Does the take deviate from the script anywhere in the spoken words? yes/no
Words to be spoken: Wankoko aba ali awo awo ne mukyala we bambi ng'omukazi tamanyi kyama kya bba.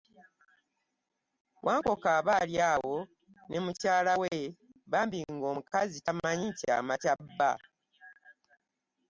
yes